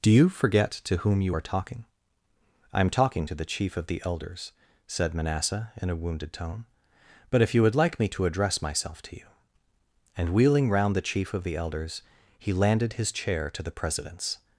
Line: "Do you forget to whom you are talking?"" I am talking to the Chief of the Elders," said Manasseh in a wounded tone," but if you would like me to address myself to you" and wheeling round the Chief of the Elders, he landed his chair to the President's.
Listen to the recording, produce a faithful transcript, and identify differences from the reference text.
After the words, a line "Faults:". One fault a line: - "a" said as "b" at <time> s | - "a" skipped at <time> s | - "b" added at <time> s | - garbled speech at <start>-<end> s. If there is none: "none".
"Do you forget to whom you are talking?"" I am talking to the Chief of the Elders," said Manasseh in a wounded tone," but if you would like me to address myself to you" and wheeling round the Chief of the Elders, he landed his chair to the President's.
Faults:
none